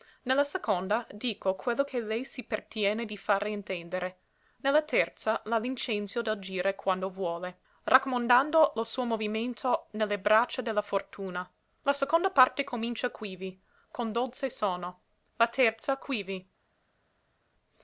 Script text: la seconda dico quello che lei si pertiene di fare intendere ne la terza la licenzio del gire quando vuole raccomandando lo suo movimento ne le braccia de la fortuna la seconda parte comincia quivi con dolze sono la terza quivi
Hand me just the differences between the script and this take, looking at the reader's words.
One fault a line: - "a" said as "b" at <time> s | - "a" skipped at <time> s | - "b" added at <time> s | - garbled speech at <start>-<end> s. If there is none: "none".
none